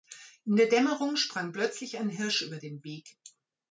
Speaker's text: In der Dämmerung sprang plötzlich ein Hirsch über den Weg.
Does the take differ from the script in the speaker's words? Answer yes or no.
no